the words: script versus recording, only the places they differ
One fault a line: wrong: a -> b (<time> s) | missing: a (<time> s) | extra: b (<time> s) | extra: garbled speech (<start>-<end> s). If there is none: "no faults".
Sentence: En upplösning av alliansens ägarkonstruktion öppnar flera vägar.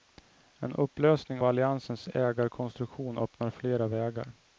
missing: av (1.4 s)